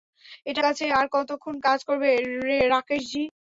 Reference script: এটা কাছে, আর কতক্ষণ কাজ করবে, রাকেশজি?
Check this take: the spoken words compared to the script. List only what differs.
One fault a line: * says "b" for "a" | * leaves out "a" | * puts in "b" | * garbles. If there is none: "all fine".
all fine